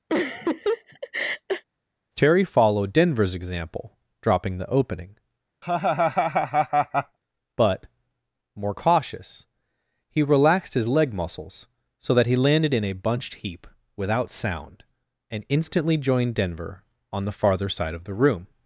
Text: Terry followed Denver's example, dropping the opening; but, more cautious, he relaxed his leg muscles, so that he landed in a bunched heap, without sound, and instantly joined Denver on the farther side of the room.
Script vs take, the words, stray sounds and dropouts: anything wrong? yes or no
yes